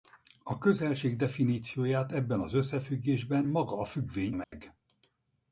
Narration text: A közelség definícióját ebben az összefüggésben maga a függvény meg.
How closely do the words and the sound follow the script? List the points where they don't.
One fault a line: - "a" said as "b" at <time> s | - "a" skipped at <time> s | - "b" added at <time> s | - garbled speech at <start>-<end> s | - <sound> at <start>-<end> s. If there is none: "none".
- dropout at 4.4-4.5 s